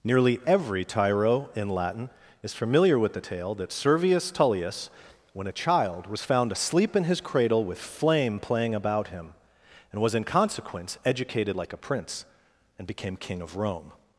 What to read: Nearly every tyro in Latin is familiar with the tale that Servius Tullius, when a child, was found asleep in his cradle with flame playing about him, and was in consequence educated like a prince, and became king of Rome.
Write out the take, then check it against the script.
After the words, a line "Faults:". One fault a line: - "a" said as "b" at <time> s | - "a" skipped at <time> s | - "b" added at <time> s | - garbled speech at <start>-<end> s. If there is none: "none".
Nearly every tyro in Latin is familiar with the tale that Servius Tullius, when a child, was found asleep in his cradle with flame playing about him, and was in consequence educated like a prince, and became king of Rome.
Faults:
none